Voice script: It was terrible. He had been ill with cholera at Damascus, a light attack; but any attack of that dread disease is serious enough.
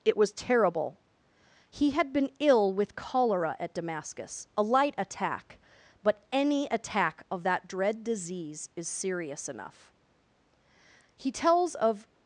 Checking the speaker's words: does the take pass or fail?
fail